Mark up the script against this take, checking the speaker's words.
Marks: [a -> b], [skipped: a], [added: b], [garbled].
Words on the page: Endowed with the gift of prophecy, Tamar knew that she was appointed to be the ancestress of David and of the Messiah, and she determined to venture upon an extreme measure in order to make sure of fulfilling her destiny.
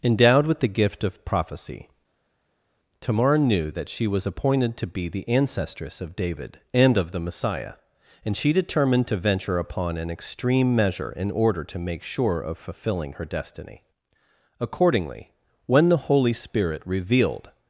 Endowed with the gift of prophecy, Tamar knew that she was appointed to be the ancestress of David and of the Messiah, and she determined to venture upon an extreme measure in order to make sure of fulfilling her destiny. [added: Accordingly when the holy spirit revealed]